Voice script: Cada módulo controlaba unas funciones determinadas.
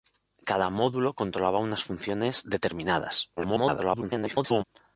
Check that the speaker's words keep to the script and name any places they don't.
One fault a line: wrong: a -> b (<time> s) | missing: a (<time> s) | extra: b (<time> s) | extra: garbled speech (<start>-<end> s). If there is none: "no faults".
extra: garbled speech (3.4-4.6 s)